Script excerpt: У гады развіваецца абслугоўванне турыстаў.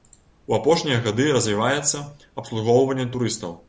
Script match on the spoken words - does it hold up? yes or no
no